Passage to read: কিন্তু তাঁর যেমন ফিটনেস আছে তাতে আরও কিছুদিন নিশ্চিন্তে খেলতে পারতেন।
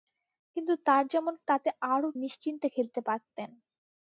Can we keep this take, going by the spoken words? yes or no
no